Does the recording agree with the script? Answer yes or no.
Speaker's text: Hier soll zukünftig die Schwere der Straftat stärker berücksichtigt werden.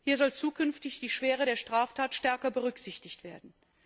yes